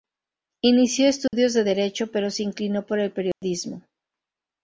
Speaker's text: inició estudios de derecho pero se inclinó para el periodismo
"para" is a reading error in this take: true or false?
true